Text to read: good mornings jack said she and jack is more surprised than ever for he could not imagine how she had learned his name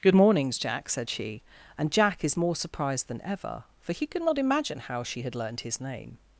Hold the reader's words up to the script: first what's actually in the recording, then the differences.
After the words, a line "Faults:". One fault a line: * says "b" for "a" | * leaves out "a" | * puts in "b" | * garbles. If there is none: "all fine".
good mornings jack said she and jack is more surprised than ever for he could not imagine how she had learned his name
Faults:
all fine